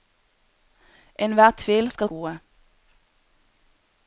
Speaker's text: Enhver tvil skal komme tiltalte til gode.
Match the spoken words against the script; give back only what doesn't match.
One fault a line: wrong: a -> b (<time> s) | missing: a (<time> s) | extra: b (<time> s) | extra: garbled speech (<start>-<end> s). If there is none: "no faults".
missing: komme tiltalte til (2.1 s)